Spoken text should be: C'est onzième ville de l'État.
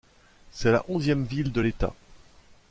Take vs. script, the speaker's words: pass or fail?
fail